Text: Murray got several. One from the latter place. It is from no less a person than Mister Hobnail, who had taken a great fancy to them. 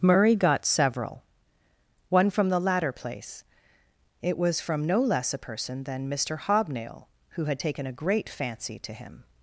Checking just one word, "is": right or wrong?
wrong